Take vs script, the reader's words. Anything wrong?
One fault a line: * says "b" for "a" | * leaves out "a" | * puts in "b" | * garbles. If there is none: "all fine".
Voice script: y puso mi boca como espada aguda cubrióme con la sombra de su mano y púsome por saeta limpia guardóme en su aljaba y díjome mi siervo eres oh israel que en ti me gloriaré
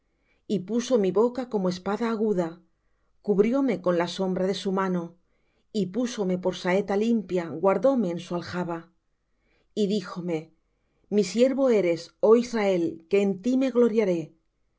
all fine